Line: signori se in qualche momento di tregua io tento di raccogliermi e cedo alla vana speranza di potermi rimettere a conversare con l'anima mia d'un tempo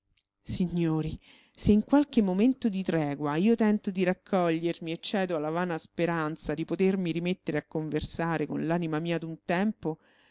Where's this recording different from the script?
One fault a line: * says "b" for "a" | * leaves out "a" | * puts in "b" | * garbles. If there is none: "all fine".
all fine